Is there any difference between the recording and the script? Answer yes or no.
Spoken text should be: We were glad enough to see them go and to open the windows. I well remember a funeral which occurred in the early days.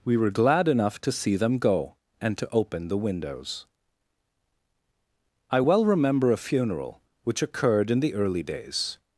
no